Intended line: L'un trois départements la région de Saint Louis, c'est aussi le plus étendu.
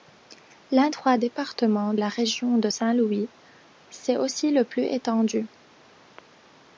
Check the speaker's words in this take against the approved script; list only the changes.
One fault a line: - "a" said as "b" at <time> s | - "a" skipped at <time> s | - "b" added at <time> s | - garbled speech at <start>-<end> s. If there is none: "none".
none